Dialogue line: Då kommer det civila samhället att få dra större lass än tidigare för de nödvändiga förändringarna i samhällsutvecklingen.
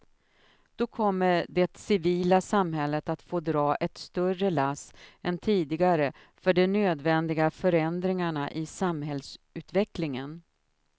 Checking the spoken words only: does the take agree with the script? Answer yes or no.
no